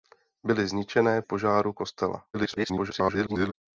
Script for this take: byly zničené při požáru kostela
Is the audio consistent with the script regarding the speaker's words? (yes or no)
no